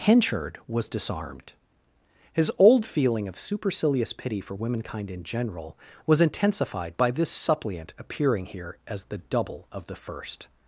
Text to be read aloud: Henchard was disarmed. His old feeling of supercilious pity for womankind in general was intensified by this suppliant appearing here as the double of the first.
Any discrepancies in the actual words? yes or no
no